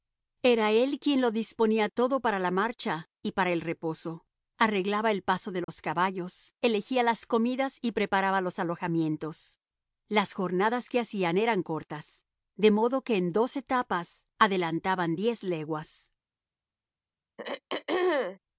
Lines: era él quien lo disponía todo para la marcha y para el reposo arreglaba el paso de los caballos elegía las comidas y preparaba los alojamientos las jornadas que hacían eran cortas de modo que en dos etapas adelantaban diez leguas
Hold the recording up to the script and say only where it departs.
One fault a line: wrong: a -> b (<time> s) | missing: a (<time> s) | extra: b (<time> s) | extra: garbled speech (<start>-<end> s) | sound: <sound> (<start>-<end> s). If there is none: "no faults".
sound: dropout (5.6-5.7 s)
sound: throat clearing (17.4-18.4 s)